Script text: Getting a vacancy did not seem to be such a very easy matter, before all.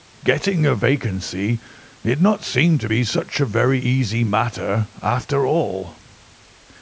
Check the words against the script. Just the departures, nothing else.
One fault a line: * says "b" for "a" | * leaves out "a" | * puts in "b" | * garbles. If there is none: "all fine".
* says "after" for "before"